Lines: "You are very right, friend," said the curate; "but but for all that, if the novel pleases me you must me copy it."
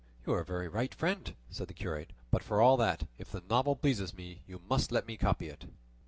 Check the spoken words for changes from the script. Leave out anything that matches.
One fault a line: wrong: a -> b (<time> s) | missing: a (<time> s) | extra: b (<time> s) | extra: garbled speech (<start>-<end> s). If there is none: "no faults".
missing: but (2.4 s)
extra: let (4.9 s)